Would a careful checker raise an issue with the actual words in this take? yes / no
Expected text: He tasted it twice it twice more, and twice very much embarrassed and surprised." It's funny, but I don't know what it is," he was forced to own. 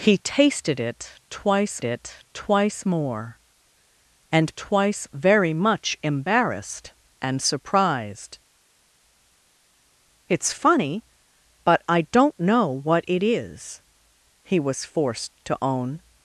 no